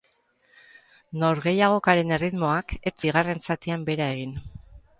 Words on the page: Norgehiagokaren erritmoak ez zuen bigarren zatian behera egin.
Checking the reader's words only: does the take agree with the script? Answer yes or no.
no